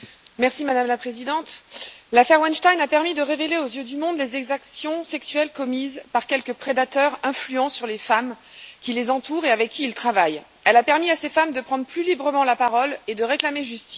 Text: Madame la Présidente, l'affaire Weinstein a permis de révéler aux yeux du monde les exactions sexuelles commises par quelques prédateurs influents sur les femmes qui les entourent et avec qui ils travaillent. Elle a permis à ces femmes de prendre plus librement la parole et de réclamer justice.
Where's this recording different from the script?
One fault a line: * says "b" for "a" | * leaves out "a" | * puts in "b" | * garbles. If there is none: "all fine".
all fine